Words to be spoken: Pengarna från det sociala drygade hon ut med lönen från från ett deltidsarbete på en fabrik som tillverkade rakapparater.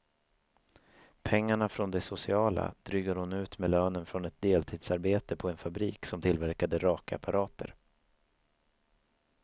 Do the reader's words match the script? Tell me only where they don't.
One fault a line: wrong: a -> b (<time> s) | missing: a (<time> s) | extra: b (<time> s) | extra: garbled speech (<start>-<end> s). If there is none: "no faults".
missing: från (4.3 s)